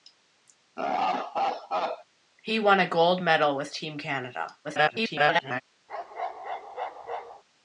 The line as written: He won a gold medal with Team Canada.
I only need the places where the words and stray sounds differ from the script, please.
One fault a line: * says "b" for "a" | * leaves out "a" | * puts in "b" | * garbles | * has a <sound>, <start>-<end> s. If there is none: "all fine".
* has a laugh, 0.8-2.0 s
* garbles
* has a bark, 5.9-7.4 s